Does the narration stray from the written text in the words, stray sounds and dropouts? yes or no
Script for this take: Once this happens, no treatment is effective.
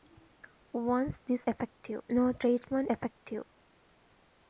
yes